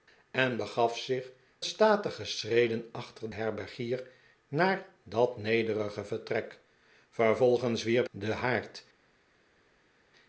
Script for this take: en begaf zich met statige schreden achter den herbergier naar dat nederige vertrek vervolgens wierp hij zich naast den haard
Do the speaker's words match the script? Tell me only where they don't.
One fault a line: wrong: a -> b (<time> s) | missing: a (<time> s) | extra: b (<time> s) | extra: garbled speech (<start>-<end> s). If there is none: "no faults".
missing: met (1.3 s)
missing: den (3.3 s)
missing: hij zich naast (8.1 s)